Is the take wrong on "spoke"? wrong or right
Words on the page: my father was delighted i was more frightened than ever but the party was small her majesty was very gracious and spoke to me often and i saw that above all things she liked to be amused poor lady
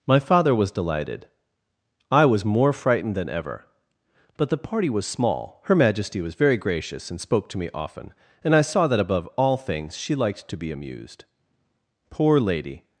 right